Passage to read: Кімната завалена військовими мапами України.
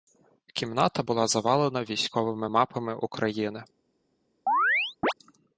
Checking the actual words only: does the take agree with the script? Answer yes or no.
no